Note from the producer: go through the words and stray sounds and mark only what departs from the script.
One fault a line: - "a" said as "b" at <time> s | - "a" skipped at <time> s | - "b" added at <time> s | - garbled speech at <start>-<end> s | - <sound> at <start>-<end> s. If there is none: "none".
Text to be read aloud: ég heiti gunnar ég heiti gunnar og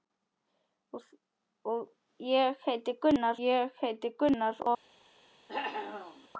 - cough at 5.5-6.3 s